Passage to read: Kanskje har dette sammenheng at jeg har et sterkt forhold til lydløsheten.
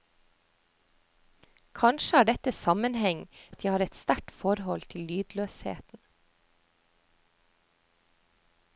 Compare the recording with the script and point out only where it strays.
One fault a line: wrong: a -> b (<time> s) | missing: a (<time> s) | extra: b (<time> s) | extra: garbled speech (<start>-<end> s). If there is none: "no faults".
no faults